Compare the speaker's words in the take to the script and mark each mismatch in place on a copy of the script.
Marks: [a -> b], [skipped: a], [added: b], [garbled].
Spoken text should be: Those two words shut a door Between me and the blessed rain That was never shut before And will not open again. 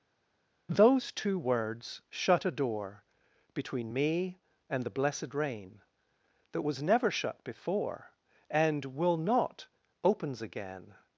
Those two words shut a door Between me and the blessed rain That was never shut before And will not [open -> opens] again.